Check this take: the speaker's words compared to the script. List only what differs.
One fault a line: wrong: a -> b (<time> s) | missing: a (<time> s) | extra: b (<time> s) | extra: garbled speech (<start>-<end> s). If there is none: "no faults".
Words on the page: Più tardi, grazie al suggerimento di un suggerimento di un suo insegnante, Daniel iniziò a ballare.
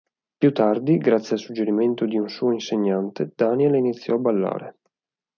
missing: suggerimento di un (2.3 s)